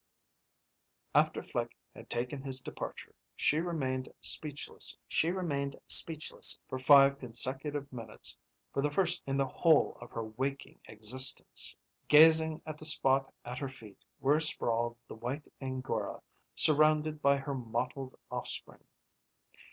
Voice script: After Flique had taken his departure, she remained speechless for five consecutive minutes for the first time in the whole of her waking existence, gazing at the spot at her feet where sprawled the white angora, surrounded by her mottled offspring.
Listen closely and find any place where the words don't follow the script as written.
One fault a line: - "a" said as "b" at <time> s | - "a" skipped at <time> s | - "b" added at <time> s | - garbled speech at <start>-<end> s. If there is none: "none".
- "she remained speechless" added at 5.1 s
- "time" skipped at 9.2 s